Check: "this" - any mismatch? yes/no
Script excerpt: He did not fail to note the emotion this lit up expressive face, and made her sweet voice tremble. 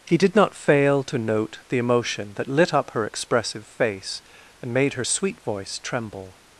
yes